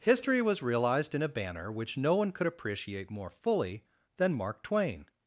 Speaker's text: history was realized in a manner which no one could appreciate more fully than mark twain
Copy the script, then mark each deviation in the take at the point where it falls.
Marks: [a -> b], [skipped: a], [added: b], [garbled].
history was realized in a [manner -> banner] which no one could appreciate more fully than mark twain